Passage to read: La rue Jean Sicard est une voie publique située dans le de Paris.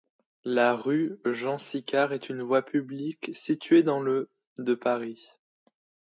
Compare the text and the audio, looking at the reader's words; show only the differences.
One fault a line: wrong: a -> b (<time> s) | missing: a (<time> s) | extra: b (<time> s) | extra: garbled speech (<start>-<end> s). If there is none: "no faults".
no faults